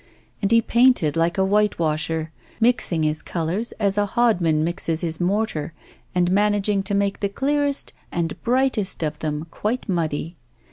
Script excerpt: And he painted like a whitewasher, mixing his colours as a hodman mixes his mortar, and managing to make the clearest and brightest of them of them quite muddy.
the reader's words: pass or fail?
fail